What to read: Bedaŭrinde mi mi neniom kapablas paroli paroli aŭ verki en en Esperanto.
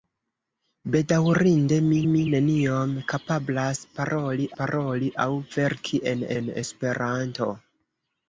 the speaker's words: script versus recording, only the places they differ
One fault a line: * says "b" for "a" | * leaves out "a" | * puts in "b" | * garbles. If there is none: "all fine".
all fine